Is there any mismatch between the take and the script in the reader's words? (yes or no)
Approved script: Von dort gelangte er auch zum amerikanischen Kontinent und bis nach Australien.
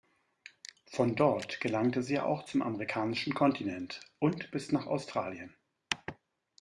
yes